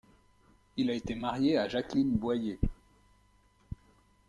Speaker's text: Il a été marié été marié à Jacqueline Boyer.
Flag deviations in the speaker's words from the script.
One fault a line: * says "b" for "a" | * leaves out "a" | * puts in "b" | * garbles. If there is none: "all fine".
* leaves out "été marié"